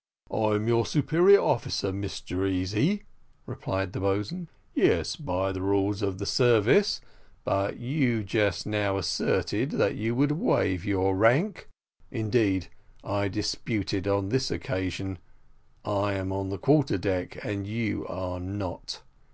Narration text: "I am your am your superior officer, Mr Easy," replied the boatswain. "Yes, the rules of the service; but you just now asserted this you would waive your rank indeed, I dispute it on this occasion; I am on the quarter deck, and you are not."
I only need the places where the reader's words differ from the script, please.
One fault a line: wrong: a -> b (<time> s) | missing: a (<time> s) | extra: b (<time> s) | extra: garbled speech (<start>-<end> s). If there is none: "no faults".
missing: am your (0.9 s)
extra: by (5.2 s)
wrong: this -> that (9.7 s)